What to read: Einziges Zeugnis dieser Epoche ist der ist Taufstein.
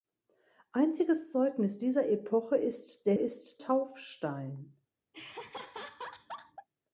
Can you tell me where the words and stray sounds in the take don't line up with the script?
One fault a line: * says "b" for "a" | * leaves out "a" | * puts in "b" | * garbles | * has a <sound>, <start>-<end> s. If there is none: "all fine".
* has a laugh, 5.1-6.7 s